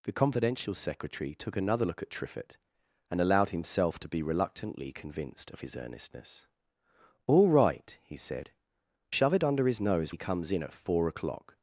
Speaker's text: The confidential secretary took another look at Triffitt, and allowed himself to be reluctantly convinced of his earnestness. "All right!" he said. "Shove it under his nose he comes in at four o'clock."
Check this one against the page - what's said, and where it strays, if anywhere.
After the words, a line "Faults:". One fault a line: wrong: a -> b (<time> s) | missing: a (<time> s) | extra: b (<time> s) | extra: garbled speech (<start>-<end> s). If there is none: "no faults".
The confidential secretary took another look at Triffitt, and allowed himself to be reluctantly convinced of his earnestness. "All right!" he said. "Shove it under his nose he comes in at four o'clock."
Faults:
no faults